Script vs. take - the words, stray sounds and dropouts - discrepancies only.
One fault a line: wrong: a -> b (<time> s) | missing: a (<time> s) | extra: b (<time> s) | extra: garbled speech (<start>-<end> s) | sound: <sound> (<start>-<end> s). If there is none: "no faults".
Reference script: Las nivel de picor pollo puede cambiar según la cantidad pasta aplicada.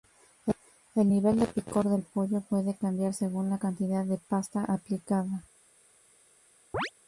wrong: Las -> El (0.9 s)
extra: del (1.9 s)
extra: de (4.0 s)
sound: chirp (6.7-6.9 s)